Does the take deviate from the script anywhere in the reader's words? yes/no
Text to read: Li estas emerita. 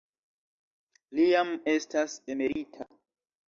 yes